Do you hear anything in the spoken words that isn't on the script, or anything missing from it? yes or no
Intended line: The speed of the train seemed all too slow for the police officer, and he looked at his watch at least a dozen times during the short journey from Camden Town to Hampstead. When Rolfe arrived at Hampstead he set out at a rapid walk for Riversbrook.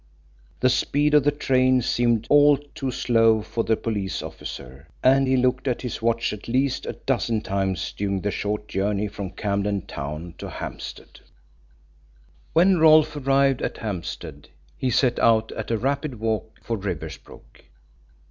no